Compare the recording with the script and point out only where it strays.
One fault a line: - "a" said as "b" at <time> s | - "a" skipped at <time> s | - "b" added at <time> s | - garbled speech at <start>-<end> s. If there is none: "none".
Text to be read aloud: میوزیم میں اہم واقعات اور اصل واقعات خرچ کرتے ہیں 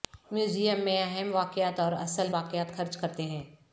none